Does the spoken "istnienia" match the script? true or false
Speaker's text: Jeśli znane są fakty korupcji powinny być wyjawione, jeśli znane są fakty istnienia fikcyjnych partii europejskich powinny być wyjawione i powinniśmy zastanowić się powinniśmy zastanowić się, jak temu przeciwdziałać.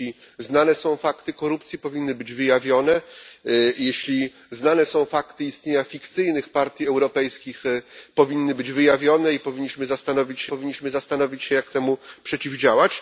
true